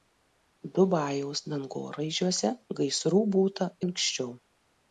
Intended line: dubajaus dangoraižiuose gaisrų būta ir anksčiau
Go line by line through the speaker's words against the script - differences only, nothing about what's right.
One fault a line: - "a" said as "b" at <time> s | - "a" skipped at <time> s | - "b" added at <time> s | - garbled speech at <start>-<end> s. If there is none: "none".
- "ir" skipped at 3.7 s